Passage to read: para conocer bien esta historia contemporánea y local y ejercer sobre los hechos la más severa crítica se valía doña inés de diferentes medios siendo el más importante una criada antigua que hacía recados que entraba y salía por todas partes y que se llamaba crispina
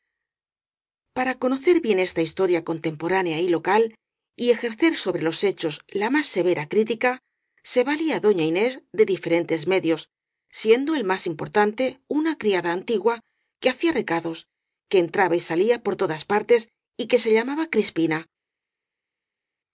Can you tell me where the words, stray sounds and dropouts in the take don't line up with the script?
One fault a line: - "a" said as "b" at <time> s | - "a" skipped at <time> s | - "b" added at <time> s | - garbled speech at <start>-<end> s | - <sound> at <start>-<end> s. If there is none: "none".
none